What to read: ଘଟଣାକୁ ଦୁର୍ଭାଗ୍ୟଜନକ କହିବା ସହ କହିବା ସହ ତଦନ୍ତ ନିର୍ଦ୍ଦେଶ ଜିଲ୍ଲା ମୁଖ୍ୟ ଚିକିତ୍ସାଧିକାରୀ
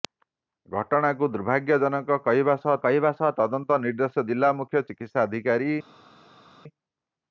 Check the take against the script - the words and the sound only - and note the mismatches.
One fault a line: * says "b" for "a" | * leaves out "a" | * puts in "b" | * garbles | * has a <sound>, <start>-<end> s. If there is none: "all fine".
all fine